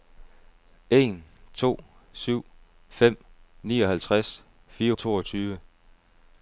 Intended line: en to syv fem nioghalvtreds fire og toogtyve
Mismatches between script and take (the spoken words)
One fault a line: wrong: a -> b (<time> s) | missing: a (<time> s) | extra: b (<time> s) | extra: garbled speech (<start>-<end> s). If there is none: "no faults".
no faults